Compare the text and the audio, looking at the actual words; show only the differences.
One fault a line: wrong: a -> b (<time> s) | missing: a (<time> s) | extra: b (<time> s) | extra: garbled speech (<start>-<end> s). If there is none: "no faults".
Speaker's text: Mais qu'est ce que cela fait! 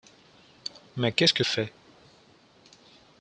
missing: cela (1.4 s)